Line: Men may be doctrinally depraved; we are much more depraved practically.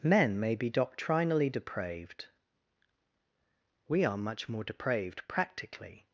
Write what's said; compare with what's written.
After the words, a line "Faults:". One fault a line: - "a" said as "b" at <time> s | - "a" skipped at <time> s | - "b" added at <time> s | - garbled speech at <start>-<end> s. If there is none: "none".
Men may be doctrinally depraved; we are much more depraved practically.
Faults:
none